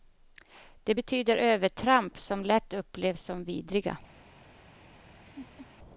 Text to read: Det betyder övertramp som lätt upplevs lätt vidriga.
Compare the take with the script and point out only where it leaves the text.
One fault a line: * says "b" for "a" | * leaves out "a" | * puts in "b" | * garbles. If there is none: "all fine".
* says "som" for "lätt"